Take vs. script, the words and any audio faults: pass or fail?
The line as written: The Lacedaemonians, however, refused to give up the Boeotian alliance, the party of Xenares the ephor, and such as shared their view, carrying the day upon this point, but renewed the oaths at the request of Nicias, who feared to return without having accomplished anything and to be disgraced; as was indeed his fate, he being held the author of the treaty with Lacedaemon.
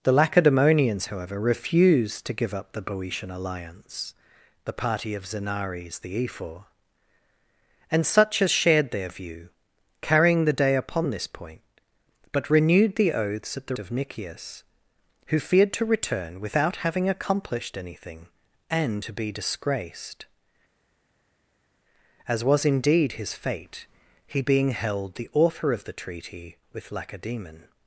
fail